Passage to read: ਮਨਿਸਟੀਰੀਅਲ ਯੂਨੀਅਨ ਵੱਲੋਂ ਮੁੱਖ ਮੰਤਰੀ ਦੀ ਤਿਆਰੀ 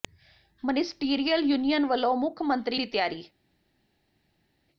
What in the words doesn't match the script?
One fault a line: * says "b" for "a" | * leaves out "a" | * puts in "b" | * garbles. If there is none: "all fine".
all fine